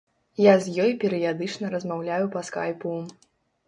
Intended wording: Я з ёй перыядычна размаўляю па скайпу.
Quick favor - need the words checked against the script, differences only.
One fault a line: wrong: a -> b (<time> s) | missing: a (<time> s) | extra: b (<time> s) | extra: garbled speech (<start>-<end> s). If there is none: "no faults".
no faults